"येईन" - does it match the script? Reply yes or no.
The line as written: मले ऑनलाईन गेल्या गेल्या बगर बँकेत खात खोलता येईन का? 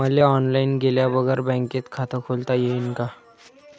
yes